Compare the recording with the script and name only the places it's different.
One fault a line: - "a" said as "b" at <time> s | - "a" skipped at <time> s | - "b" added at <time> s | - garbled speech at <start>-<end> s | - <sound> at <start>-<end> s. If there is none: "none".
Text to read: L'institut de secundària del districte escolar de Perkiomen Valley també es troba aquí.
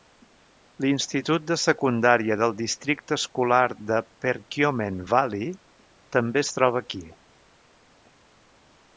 none